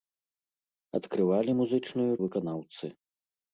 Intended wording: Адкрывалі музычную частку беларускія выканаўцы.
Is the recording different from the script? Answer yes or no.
yes